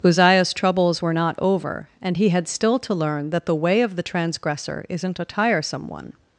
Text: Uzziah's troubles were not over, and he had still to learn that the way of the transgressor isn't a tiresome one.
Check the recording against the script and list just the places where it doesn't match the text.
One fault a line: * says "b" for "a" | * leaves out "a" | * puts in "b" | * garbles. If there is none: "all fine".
all fine